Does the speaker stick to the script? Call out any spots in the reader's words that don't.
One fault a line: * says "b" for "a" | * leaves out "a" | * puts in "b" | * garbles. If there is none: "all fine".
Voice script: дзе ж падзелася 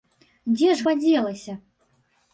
all fine